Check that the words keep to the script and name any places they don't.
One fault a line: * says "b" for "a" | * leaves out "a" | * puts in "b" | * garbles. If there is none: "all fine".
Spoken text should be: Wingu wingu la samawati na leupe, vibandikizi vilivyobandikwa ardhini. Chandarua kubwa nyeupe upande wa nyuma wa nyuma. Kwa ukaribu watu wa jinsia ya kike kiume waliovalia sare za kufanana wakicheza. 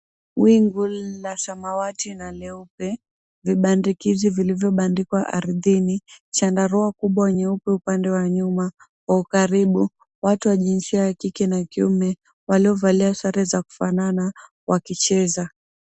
* leaves out "wingu"
* leaves out "wa nyuma"
* puts in "na"